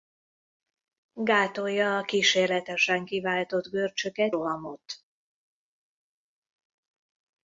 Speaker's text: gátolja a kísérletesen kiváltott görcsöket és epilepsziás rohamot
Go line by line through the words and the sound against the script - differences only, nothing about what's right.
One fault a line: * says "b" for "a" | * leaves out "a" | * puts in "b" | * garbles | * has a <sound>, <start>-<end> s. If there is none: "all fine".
* leaves out "és epilepsziás"